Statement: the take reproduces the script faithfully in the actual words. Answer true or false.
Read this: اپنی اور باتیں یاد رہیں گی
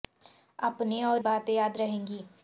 true